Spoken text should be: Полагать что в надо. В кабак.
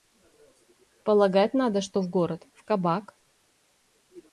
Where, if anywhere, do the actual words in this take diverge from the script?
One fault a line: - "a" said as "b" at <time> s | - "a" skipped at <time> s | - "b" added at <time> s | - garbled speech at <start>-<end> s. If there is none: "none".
- "надо" added at 1.5 s
- "надо" said as "город" at 2.1 s